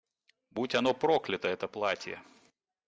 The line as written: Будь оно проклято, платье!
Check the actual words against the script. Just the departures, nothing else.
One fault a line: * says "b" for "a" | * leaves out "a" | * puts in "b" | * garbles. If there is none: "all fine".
* puts in "это"